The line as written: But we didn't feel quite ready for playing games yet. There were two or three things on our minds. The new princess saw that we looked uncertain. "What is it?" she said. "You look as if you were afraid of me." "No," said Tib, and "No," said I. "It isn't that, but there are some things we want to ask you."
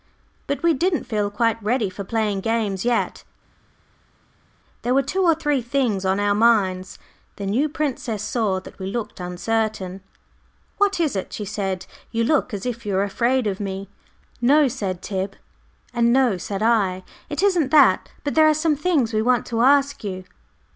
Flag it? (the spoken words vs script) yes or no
no